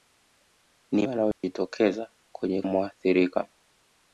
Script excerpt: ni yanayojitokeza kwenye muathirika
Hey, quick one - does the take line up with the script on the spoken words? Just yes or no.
yes